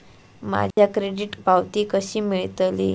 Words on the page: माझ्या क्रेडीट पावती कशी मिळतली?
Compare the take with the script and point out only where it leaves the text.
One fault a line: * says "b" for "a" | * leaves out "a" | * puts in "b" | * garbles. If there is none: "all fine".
all fine